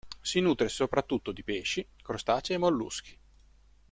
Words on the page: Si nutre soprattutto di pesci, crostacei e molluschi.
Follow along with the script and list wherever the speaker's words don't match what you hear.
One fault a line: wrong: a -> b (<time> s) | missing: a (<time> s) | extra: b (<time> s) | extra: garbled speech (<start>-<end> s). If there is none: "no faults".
no faults